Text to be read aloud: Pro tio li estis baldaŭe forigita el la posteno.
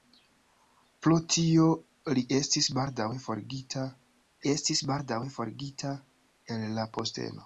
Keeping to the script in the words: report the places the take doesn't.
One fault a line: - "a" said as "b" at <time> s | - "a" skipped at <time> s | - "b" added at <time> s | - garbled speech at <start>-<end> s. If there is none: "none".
- "estis baldaŭe forigita" added at 4.5 s